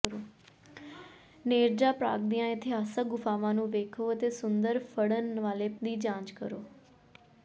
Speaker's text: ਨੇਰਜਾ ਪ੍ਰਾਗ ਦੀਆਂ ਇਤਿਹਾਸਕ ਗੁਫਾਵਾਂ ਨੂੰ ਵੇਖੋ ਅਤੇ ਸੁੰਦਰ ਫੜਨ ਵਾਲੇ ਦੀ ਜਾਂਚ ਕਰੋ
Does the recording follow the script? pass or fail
pass